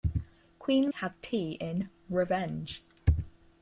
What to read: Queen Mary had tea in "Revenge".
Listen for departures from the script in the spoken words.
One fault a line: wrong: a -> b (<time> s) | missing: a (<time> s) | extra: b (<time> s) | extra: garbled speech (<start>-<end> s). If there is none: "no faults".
missing: Mary (0.9 s)